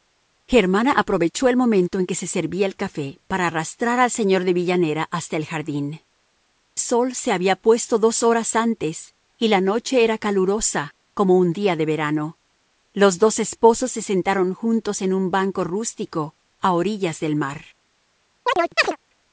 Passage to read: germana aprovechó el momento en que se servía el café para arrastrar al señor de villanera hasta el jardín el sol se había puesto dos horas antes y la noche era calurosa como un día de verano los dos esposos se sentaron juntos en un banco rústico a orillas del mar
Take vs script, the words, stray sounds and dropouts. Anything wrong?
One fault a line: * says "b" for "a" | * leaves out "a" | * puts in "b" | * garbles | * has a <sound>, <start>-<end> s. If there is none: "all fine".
* leaves out "el"
* has a chirp, 18.5-19.0 s